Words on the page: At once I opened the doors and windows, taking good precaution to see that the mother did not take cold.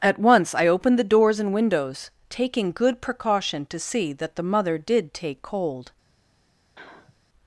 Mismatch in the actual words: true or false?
true